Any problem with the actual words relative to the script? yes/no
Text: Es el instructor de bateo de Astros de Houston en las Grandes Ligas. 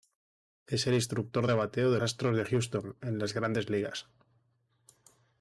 no